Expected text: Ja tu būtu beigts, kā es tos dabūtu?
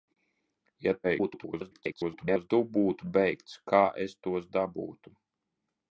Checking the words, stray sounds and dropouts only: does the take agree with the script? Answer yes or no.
no